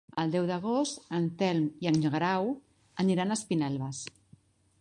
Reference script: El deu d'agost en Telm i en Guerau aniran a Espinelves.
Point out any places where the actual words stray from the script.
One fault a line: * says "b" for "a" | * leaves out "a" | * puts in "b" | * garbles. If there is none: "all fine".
all fine